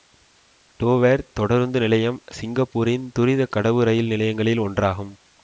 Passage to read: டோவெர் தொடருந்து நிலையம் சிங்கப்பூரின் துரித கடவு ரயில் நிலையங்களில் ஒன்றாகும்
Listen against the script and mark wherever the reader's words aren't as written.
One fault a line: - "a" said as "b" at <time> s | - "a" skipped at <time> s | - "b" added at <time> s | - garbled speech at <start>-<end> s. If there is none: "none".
none